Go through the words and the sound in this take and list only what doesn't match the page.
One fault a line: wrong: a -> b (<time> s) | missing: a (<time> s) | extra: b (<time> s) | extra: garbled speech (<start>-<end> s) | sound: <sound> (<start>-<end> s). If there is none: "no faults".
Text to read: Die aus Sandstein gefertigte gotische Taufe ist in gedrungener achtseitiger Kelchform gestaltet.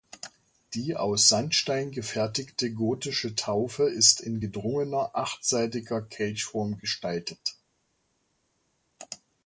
no faults